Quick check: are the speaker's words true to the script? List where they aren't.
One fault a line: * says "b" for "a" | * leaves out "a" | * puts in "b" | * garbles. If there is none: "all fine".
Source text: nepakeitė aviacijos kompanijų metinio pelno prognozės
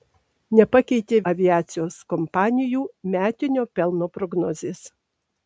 all fine